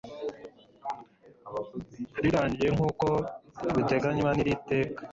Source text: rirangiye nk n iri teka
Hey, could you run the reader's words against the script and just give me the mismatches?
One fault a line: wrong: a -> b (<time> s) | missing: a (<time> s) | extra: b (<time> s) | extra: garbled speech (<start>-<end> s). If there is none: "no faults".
extra: uko biteganywa (2.9 s)